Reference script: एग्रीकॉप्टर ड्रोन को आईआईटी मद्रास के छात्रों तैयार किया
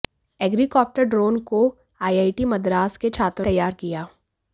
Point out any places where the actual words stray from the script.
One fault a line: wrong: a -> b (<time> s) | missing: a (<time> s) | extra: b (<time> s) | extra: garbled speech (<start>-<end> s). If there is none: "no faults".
no faults